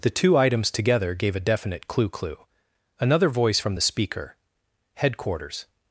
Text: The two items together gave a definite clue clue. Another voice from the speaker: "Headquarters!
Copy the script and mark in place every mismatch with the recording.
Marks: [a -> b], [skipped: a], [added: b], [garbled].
The two items together gave a definite clue clue. Another voice from the speaker: "Headquarters!